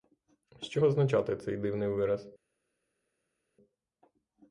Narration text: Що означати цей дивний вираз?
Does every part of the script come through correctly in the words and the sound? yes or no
yes